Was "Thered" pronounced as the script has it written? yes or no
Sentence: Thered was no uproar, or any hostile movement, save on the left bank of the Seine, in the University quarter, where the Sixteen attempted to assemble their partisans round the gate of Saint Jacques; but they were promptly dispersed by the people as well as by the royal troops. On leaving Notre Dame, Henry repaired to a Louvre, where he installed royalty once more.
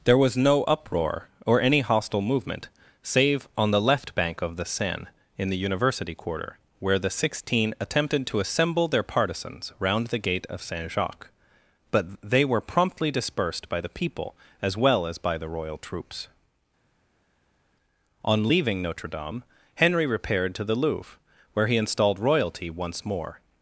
no